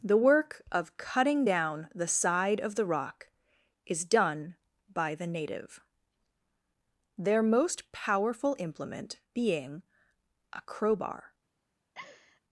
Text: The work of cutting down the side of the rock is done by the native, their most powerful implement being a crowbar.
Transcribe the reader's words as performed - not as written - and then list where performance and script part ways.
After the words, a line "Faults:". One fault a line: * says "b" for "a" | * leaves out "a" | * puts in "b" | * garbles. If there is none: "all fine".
The work of cutting down the side of the rock is done by the native, their most powerful implement being a crowbar.
Faults:
all fine